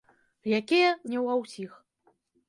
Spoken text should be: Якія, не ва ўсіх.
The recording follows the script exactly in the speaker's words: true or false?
true